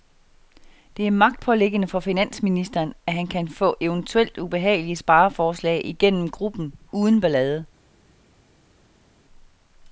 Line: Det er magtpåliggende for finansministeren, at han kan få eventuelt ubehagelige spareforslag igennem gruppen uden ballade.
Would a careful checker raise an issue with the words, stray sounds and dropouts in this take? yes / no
no